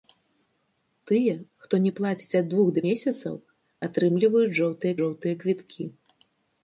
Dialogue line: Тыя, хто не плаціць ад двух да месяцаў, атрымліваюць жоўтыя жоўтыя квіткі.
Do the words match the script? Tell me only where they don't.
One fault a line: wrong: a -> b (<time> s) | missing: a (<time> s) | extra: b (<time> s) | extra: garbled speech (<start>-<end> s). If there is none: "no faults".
no faults